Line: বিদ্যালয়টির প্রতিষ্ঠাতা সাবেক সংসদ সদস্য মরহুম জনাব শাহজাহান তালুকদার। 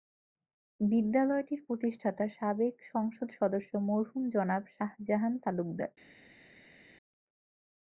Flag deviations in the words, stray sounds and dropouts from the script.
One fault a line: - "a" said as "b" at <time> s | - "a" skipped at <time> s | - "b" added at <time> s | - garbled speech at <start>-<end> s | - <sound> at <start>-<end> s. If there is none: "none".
none